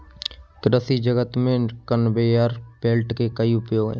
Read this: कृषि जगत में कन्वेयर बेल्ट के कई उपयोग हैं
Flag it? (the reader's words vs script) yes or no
no